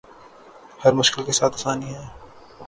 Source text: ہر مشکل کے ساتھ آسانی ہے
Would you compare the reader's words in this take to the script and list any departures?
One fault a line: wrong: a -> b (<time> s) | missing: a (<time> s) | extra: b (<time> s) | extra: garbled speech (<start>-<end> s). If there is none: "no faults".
no faults